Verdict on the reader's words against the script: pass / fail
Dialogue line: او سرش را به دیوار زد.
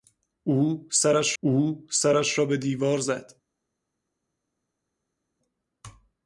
fail